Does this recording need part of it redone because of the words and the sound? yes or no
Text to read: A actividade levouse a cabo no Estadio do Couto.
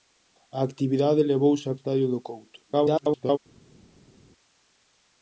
yes